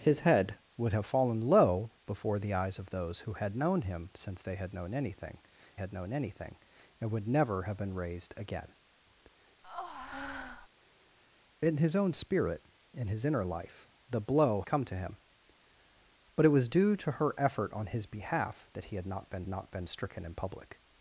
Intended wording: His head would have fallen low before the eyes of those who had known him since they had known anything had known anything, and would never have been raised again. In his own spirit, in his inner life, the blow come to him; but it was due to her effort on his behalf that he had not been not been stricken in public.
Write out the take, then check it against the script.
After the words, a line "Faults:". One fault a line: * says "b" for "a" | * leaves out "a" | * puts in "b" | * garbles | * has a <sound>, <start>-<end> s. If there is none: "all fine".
His head would have fallen low before the eyes of those who had known him since they had known anything had known anything, and would never have been raised again. In his own spirit, in his inner life, the blow come to him; but it was due to her effort on his behalf that he had not been not been stricken in public.
Faults:
* has a breath, 9.6-10.7 s